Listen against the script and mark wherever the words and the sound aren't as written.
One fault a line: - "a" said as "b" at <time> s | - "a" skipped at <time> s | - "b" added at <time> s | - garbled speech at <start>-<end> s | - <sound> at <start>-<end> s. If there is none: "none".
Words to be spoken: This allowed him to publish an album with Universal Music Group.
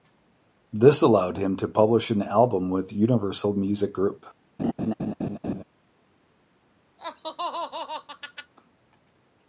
- laugh at 4.6-5.6 s
- laugh at 7.0-8.5 s